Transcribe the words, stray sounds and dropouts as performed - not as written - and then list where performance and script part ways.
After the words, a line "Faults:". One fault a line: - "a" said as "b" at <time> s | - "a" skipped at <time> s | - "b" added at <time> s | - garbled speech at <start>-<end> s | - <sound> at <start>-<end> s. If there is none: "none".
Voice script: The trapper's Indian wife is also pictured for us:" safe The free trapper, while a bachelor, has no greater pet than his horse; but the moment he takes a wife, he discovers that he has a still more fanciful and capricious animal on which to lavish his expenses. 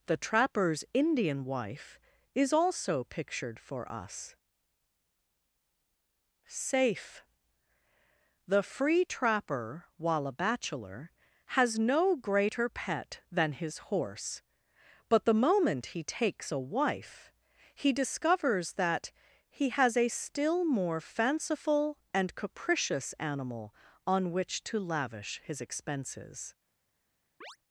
The trapper's Indian wife is also pictured for us:" safe The free trapper, while a bachelor, has no greater pet than his horse; but the moment he takes a wife, he discovers that he has a still more fanciful and capricious animal on which to lavish his expenses.
Faults:
- chirp at 27.4-27.6 s